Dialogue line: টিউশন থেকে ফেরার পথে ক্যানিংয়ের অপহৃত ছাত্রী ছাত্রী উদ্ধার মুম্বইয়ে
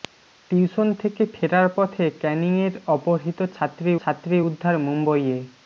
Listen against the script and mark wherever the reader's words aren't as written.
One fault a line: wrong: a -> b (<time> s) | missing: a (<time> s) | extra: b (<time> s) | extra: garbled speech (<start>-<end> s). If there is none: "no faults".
no faults